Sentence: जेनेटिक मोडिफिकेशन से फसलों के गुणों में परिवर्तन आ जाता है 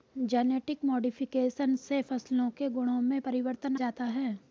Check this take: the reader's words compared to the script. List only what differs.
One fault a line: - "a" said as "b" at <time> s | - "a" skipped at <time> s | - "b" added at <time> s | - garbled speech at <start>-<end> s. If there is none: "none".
- "आ" skipped at 3.8 s